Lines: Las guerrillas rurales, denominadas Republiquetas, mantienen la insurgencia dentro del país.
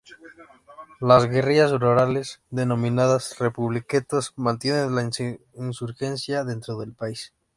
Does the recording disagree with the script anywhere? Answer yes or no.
no